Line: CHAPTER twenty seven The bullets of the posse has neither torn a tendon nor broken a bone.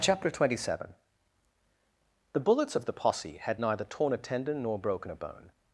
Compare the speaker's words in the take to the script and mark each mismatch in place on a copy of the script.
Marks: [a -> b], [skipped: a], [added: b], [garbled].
CHAPTER twenty seven The bullets of the posse [has -> had] neither torn a tendon nor broken a bone.